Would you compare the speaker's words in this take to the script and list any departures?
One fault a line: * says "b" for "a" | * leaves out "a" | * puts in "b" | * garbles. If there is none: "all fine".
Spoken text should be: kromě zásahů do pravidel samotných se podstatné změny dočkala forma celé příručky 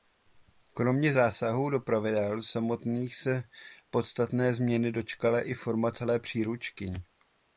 * puts in "i"